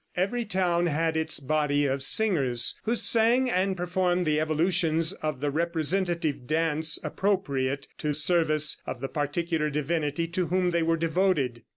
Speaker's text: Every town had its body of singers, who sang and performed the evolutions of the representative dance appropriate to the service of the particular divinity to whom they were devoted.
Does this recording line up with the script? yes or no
no